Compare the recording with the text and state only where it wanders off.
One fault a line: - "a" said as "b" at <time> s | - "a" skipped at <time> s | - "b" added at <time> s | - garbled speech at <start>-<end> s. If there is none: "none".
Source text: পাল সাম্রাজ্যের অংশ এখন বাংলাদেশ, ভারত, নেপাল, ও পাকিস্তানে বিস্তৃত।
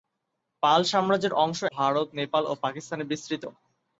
- "এখন বাংলাদেশ" skipped at 1.6 s